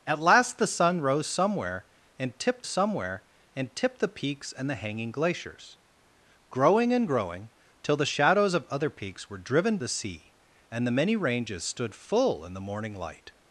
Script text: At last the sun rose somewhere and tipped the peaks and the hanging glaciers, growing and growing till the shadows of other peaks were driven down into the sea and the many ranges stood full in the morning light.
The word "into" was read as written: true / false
false